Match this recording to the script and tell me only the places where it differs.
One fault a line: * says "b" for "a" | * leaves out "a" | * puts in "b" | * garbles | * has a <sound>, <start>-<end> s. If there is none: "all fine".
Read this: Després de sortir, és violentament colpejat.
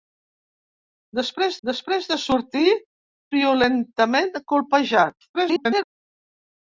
* puts in "després"
* leaves out "és"
* garbles